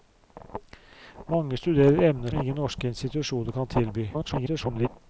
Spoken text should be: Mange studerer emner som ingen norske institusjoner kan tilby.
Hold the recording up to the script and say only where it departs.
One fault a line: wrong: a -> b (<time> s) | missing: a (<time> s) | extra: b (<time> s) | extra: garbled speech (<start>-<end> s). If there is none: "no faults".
missing: som (2.3 s)
extra: garbled speech (4.1-4.9 s)